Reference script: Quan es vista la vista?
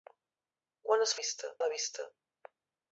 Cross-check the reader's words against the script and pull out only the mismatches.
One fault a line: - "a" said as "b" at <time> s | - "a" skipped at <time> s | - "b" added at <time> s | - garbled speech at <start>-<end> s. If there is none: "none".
none